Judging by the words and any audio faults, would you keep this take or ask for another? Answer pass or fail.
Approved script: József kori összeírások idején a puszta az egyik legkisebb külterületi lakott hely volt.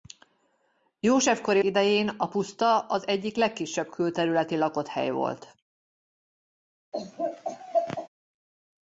fail